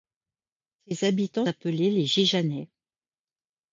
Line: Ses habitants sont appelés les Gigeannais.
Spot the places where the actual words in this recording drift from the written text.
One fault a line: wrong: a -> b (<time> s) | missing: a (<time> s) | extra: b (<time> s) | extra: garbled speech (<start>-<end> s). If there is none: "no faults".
missing: sont (1.4 s)